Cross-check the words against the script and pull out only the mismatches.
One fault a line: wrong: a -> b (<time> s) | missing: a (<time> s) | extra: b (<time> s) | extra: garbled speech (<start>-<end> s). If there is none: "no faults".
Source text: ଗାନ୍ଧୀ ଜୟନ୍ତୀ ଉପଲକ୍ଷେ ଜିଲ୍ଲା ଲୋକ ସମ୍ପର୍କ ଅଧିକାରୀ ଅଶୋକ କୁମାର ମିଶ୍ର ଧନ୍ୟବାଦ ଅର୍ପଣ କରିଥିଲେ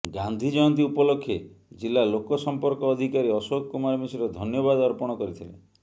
no faults